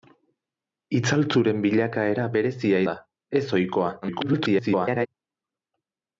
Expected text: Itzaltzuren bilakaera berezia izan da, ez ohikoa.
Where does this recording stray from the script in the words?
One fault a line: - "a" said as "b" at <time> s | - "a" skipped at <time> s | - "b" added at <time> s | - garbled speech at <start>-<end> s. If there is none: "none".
- "izan" skipped at 2.8 s
- garbled speech at 4.0-5.1 s